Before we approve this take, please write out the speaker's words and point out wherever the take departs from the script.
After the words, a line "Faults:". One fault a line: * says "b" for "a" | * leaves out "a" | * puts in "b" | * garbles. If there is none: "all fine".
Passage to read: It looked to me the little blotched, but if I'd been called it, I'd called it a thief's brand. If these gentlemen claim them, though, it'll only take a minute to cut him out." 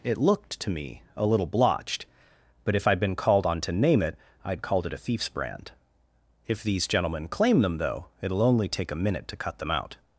It looked to me a little blotched, but if I'd been called on to name it, I'd called it a thief's brand. If these gentlemen claim them, though, it'll only take a minute to cut them out."
Faults:
* says "a" for "the"
* puts in "on to name"
* says "them" for "him"